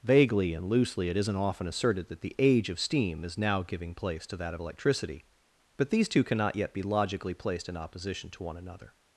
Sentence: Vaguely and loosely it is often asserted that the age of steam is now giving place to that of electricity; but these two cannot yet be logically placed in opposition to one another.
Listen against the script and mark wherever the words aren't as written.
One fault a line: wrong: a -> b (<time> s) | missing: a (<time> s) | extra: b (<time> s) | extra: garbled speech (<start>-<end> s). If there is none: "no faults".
wrong: is -> isn't (1.2 s)